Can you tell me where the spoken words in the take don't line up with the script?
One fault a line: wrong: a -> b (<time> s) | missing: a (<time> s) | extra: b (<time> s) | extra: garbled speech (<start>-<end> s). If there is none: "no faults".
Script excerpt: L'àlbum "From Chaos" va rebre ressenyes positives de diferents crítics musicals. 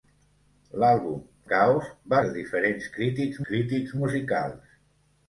missing: From (1.2 s)
missing: rebre ressenyes positives (2.2 s)
extra: crítics (3.5 s)